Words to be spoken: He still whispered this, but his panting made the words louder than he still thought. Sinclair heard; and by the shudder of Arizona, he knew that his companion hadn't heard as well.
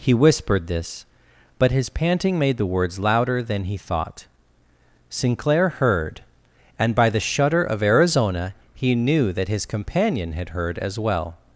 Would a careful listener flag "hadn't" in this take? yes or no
yes